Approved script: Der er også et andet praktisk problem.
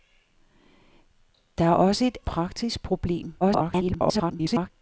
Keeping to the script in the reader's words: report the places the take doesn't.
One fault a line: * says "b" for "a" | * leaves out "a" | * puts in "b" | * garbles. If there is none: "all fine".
* leaves out "andet"
* garbles